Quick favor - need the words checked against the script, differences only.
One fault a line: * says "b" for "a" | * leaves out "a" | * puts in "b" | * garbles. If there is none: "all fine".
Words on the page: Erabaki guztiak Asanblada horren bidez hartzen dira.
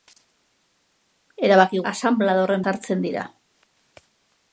* leaves out "guztiak"
* leaves out "bidez"